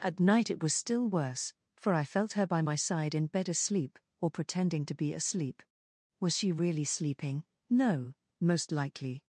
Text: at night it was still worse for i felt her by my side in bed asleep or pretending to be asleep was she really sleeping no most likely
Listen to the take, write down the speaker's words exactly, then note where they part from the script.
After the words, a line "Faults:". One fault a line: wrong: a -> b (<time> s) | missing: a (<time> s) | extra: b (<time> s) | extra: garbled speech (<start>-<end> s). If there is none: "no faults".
at night it was still worse for i felt her by my side in bed asleep or pretending to be asleep was she really sleeping no most likely
Faults:
no faults